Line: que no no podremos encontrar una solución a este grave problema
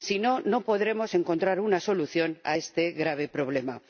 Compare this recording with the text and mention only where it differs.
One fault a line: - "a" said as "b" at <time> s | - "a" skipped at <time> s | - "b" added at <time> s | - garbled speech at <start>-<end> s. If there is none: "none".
- "que" said as "si" at 0.0 s